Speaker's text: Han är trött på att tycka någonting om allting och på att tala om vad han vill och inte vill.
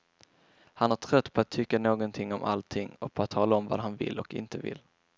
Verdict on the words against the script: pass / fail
pass